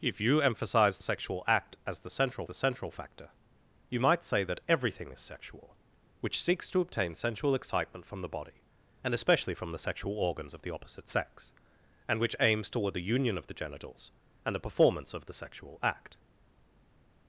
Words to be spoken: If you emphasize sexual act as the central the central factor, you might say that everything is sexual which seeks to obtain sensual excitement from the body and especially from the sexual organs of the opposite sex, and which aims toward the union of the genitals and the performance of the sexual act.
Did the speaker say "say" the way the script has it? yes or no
yes